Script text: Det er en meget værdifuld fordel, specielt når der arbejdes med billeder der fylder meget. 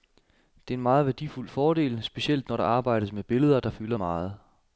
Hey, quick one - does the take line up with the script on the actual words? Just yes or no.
yes